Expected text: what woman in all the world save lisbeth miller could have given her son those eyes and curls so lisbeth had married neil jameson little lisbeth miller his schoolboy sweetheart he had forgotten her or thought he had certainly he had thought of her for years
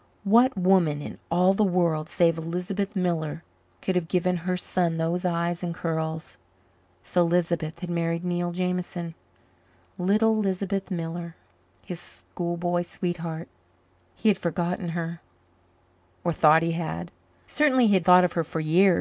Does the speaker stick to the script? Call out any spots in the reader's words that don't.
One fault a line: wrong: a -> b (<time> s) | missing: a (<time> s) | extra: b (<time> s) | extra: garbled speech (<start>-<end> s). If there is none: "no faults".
no faults